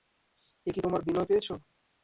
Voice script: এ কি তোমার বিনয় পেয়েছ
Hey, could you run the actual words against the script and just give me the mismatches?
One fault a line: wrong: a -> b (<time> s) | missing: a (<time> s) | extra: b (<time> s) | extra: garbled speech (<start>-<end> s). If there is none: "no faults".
no faults